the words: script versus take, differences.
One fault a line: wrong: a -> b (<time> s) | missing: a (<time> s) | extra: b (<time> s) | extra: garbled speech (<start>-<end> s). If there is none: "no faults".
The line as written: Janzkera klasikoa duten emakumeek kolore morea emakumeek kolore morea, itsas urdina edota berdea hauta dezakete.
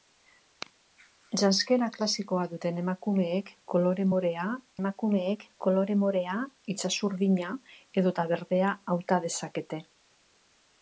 no faults